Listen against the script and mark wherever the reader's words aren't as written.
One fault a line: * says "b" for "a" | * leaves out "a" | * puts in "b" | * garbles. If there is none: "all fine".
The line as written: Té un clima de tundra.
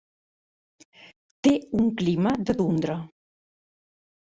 all fine